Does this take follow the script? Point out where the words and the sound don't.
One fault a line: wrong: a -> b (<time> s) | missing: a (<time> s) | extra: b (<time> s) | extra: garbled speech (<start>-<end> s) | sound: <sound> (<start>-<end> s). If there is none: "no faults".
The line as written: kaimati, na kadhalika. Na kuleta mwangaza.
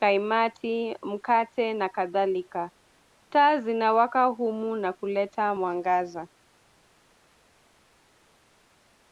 extra: mkate (1.0 s)
extra: Taa zinawaka humu (3.3 s)